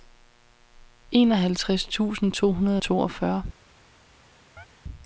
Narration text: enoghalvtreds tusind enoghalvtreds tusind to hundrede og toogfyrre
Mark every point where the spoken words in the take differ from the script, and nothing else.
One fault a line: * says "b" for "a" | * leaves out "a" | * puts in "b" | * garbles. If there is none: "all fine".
* leaves out "enoghalvtreds tusind"